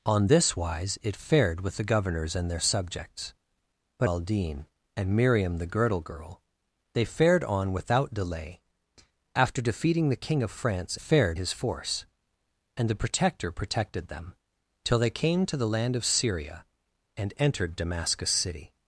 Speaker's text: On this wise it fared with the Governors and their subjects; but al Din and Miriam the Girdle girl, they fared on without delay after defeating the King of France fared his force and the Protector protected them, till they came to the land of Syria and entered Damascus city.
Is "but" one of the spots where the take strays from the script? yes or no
no